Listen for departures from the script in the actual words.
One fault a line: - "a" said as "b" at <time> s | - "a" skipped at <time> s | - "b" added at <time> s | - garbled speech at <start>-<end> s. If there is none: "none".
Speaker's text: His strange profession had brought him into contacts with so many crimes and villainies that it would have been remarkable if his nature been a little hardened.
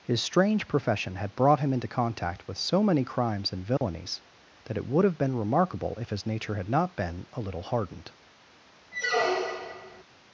- "contacts" said as "contact" at 1.9 s
- "had not" added at 6.6 s